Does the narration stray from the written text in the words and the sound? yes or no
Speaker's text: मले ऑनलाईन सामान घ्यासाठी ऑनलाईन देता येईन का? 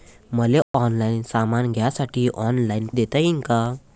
yes